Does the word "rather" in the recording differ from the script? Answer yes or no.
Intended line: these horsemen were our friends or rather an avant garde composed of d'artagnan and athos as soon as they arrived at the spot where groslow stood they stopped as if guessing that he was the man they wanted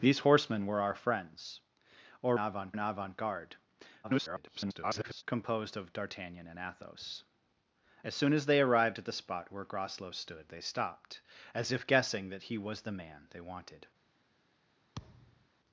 yes